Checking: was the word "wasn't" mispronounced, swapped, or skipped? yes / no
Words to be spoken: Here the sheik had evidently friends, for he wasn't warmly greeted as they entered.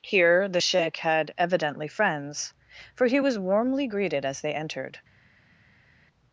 yes